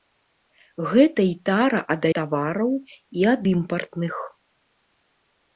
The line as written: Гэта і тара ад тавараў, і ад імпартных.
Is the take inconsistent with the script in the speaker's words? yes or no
no